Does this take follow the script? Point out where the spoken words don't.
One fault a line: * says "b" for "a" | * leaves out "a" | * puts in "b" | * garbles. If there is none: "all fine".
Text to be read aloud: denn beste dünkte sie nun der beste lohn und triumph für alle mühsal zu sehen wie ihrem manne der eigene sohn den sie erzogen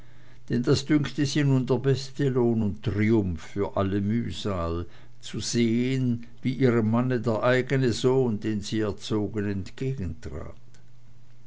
* says "das" for "beste"